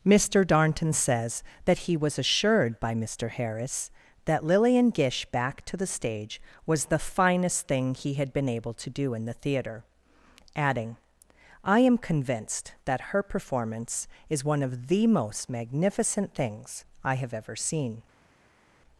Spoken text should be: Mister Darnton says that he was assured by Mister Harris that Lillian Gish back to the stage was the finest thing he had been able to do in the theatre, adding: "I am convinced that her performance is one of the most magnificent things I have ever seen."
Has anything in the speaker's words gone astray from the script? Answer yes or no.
no